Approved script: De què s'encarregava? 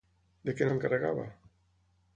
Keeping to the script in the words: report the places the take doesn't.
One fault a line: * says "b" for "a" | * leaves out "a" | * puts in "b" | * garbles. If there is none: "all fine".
all fine